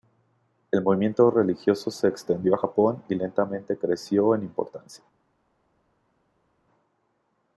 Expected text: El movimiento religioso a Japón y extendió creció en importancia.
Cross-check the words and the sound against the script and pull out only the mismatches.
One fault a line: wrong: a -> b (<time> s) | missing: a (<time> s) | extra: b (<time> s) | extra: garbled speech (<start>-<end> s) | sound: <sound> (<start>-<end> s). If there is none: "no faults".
extra: se extendió (1.9 s)
wrong: extendió -> lentamente (3.1 s)